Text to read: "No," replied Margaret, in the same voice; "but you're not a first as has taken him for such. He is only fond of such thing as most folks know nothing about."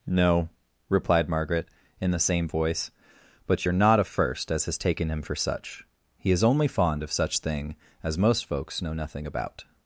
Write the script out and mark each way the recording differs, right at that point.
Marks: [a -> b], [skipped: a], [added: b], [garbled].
"No," replied Margaret, in the same voice; "but you're not a first as has taken him for such. He is only fond of such thing as most folks know nothing about."